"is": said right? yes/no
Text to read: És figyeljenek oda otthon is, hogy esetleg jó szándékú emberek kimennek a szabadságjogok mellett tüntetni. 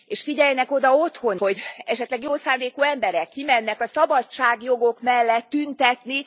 no